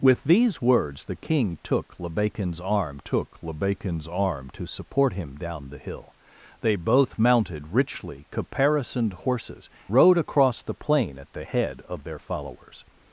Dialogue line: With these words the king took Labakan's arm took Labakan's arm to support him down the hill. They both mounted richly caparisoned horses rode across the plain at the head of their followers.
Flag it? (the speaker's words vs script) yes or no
no